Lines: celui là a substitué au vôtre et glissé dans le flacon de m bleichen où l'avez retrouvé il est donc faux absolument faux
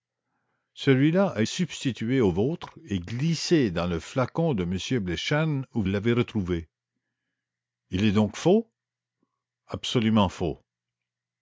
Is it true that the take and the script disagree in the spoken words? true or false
false